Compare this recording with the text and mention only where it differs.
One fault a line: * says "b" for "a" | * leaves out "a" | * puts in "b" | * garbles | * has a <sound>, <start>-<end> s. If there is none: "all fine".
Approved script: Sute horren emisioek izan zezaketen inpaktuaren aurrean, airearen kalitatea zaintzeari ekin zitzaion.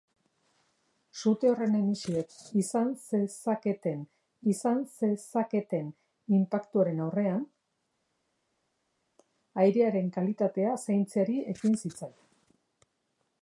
* puts in "izan zezaketen"